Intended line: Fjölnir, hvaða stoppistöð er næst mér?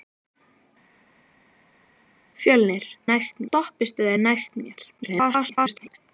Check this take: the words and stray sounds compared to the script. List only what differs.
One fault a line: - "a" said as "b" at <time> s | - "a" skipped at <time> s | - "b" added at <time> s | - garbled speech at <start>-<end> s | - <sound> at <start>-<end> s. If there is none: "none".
- "hvaða" said as "næst" at 3.1 s
- garbled speech at 5.0-6.0 s